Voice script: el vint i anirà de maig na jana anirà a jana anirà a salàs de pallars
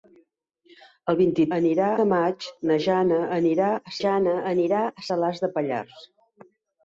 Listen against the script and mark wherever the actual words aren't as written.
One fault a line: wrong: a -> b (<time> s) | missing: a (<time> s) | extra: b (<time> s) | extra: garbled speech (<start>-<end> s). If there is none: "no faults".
no faults